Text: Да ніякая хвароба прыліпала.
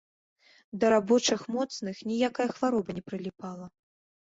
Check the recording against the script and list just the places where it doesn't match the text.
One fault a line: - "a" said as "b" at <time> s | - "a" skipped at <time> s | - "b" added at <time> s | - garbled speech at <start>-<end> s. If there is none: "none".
- "рабочых моцных" added at 0.9 s
- "не" added at 3.0 s